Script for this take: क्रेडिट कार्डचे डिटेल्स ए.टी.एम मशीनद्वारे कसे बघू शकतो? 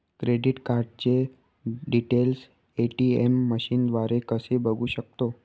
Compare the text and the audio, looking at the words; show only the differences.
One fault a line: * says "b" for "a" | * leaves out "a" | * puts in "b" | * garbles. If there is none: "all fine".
all fine